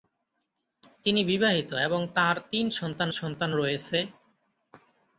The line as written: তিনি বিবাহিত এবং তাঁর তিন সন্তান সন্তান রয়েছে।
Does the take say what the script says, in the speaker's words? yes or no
yes